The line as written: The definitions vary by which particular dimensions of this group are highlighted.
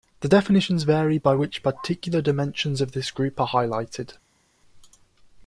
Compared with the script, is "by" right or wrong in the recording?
right